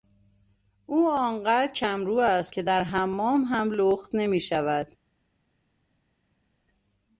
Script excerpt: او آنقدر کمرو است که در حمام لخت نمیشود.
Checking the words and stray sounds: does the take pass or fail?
fail